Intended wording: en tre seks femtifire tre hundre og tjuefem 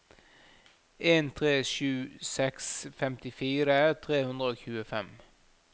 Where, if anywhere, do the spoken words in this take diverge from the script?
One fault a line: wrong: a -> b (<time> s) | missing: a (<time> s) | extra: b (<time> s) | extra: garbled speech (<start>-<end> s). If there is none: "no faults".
extra: sju (1.7 s)